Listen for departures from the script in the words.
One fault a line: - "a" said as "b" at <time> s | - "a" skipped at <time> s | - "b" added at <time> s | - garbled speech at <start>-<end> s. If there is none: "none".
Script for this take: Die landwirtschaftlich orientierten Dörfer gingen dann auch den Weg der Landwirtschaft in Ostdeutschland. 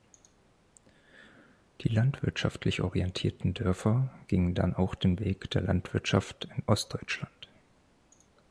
none